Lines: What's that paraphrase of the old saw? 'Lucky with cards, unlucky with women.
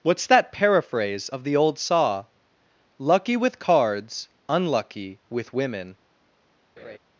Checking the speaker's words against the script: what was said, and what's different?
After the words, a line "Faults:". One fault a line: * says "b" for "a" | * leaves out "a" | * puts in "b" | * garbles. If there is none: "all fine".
What's that paraphrase of the old saw? 'Lucky with cards, unlucky with women.
Faults:
all fine